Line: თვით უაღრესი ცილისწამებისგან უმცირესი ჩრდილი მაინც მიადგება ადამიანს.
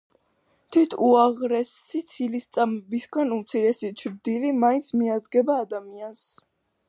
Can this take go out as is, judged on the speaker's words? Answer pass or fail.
pass